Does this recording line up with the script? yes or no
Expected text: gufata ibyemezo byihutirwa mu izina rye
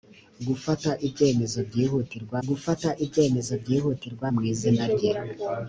no